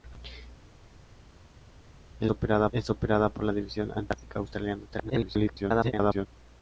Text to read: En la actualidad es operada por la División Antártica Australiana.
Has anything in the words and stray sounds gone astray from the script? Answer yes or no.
yes